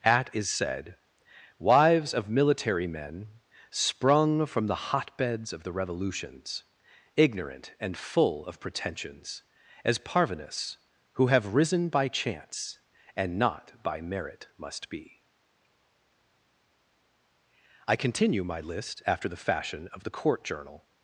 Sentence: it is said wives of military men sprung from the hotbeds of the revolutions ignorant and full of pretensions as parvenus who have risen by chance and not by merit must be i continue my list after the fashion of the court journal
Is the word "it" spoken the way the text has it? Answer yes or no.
no